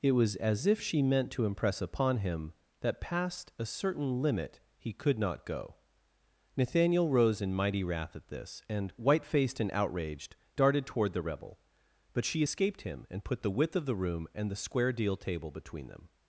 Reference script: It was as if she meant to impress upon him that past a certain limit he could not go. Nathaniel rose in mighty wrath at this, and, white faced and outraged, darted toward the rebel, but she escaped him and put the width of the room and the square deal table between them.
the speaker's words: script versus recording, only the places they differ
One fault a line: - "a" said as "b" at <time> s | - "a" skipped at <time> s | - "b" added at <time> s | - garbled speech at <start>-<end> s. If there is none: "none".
none